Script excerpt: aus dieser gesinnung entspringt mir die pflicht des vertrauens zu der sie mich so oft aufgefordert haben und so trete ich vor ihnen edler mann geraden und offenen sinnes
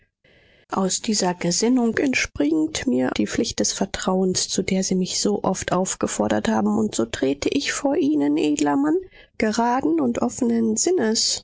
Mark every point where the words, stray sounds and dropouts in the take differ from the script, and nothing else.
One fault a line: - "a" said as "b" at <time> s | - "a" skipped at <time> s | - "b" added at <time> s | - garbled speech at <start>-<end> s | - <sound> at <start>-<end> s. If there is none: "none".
none